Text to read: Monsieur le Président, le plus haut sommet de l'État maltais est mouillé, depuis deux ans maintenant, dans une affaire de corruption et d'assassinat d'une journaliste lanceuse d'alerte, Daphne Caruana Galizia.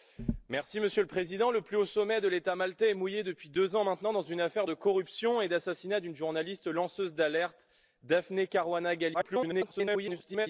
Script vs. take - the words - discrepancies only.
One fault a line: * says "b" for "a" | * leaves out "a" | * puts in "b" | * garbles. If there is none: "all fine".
* garbles